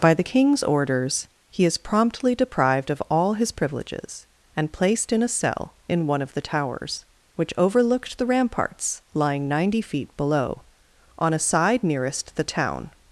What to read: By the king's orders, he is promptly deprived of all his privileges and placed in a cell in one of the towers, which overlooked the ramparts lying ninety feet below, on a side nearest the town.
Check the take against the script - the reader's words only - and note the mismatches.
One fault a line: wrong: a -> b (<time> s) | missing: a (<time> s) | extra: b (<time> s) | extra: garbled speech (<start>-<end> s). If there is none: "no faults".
no faults